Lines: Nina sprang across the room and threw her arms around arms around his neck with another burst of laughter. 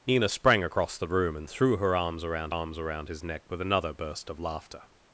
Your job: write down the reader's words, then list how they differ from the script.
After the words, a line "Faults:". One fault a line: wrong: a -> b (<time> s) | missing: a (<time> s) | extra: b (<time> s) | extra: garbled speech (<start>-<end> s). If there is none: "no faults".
Nina sprang across the room and threw her arms around arms around his neck with another burst of laughter.
Faults:
no faults